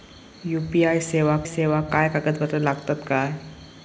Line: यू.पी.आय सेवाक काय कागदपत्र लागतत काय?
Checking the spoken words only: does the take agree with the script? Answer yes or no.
no